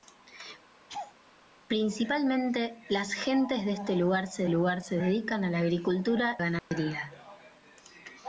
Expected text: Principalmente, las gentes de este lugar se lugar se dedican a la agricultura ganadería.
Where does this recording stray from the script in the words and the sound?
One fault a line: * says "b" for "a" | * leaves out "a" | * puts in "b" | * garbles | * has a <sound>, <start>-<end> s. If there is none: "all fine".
* has a laugh, 0.9-1.2 s
* has a dropout, 6.6-6.7 s